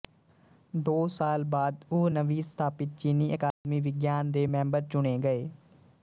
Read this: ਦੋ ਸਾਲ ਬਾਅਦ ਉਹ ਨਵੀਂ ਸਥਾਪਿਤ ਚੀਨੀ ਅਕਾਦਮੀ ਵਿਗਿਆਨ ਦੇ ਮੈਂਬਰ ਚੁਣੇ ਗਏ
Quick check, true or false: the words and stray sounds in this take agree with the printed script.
false